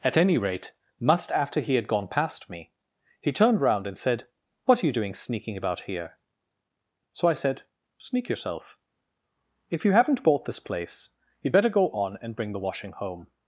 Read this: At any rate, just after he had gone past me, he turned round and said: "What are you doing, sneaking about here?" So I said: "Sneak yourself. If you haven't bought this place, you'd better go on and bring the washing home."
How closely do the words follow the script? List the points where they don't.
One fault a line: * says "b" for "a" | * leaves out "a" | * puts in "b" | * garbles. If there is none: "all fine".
* says "must" for "just"